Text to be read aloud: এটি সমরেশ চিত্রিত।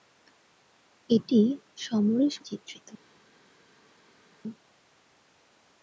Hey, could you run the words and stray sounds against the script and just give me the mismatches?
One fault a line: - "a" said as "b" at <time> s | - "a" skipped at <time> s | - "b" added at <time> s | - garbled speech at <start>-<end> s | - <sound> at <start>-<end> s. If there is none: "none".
none